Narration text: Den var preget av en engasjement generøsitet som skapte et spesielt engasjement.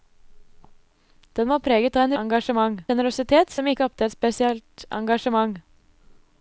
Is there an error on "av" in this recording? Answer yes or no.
no